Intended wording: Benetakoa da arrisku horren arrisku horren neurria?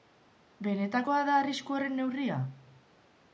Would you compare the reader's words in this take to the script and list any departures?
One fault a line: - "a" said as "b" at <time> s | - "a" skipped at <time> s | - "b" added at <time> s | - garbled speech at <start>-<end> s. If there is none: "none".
- "arrisku horren" skipped at 1.9 s